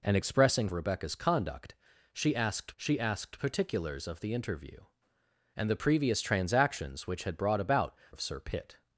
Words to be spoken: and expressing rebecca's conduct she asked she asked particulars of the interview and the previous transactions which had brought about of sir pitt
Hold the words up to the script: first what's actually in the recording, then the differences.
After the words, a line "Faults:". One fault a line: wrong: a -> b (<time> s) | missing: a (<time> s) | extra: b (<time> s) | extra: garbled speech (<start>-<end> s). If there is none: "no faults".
and expressing rebecca's conduct she asked she asked particulars of the interview and the previous transactions which had brought about of sir pitt
Faults:
no faults